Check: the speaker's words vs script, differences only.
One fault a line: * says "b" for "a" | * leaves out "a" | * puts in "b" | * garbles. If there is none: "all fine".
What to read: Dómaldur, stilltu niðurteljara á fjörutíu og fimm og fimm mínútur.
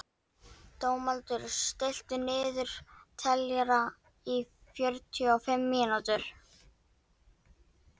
* leaves out "og fimm"